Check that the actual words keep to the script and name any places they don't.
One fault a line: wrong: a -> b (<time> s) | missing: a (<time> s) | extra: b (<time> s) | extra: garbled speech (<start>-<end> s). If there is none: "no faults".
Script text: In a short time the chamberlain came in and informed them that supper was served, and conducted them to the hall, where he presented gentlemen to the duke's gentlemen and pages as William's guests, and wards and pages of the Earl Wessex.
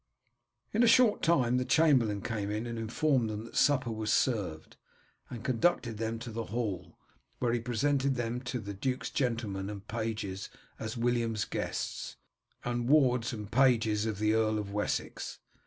wrong: gentlemen -> them (8.2 s)
extra: of (14.6 s)